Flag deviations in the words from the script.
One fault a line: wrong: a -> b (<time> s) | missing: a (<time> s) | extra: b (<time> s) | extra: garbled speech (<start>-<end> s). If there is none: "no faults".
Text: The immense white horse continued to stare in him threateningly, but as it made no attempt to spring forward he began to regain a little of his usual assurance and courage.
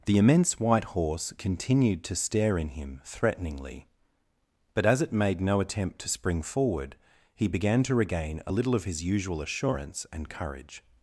no faults